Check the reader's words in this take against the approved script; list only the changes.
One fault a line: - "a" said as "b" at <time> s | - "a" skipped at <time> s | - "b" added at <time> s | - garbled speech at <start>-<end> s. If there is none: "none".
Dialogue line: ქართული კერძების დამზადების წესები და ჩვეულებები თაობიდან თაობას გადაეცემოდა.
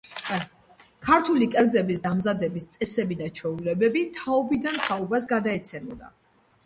none